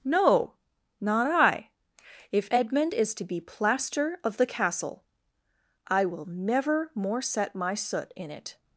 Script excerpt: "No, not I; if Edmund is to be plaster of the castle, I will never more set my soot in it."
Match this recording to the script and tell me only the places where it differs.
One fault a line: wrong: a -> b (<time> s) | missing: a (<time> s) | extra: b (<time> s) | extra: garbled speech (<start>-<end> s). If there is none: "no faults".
no faults